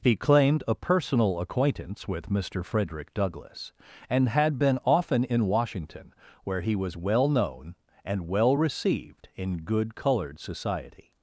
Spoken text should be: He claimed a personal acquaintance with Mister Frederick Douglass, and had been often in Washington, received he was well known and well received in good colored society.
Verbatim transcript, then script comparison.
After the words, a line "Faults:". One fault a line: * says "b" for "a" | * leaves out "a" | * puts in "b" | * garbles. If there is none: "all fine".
He claimed a personal acquaintance with Mister Frederick Douglass, and had been often in Washington, where he was well known and well received in good colored society.
Faults:
* says "where" for "received"